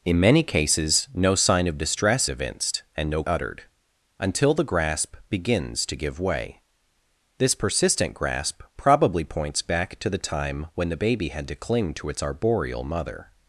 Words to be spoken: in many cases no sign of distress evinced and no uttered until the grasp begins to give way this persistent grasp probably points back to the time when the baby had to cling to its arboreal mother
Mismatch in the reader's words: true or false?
false